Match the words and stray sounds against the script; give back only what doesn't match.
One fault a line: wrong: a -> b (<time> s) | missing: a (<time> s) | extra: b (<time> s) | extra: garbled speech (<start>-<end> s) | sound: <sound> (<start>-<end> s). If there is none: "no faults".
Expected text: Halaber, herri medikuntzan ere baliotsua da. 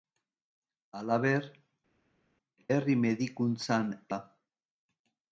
missing: ere baliotsua (3.9 s)